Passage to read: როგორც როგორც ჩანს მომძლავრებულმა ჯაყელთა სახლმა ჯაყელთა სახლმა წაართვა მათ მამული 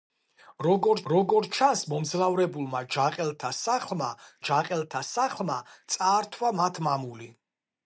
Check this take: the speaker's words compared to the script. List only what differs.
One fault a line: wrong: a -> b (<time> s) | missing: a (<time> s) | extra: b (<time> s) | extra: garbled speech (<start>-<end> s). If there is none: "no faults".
no faults